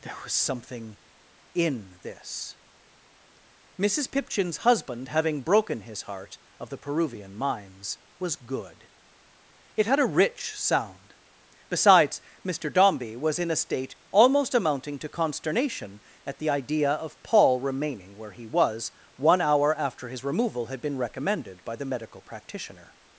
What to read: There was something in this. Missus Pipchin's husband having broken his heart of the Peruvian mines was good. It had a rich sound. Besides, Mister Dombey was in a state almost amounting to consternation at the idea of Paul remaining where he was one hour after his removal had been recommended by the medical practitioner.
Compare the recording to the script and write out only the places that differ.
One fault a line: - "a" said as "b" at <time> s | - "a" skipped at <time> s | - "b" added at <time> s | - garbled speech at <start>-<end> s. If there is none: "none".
none